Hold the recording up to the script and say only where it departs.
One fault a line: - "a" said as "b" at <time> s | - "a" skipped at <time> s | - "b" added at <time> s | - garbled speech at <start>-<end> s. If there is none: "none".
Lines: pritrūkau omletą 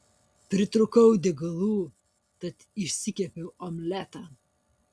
- "degalų tad išsikepiau" added at 1.3 s